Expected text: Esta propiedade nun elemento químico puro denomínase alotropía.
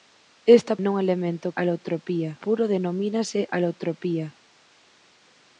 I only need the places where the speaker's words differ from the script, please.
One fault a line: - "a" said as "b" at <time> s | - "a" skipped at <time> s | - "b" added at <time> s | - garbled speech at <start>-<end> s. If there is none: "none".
- "propiedade" skipped at 0.7 s
- "químico" said as "alotropía" at 1.6 s